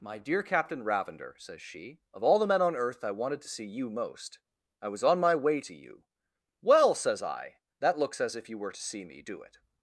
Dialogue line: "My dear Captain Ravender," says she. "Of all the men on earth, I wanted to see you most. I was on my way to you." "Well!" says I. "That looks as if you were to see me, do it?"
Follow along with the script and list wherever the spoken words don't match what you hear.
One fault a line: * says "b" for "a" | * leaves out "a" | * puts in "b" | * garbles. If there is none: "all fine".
all fine